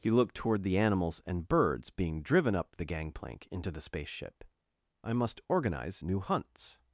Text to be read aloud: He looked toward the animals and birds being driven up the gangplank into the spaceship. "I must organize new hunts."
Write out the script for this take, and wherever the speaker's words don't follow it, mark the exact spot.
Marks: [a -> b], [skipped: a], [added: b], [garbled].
He looked toward the animals and birds being driven up the gangplank into the spaceship. "I must organize new hunts."